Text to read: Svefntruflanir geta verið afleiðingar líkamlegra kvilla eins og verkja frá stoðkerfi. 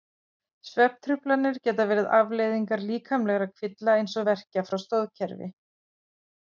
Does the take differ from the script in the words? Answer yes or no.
no